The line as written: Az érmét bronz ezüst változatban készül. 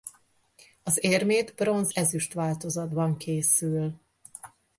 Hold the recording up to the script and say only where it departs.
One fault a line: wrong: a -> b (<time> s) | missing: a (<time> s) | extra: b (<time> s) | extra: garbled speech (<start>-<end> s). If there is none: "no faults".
no faults